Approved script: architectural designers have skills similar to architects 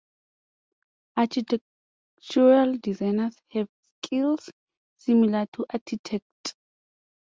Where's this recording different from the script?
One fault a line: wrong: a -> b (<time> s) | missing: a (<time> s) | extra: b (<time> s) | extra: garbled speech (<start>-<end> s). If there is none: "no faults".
no faults